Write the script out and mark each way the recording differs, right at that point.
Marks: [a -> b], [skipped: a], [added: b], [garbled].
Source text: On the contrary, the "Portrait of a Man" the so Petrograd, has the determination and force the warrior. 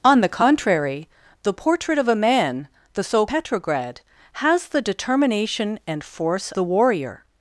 On the contrary, the "Portrait of a Man" the so Petrograd, has the determination and force the warrior.